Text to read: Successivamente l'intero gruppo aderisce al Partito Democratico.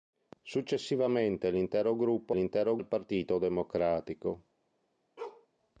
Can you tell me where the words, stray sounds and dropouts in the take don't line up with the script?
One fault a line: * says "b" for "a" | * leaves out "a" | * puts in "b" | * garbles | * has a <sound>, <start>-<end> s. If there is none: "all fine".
* says "l'intero" for "aderisce"
* has a bark, 5.2-5.5 s